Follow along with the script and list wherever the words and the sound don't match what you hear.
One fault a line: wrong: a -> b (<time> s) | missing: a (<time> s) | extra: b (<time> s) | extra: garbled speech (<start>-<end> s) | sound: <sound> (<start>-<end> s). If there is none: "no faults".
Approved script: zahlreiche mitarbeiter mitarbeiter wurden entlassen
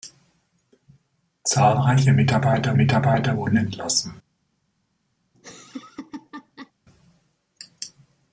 sound: laugh (5.3-6.7 s)